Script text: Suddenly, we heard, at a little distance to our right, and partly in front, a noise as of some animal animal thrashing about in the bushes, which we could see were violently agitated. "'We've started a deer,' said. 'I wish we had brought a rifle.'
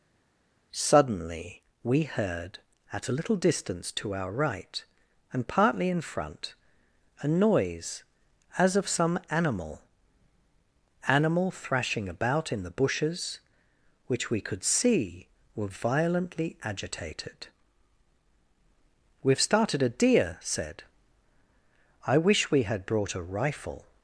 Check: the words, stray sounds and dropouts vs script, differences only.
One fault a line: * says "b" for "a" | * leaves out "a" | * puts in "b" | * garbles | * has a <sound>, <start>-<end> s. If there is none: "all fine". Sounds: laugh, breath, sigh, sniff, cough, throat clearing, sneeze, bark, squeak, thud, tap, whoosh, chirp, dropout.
all fine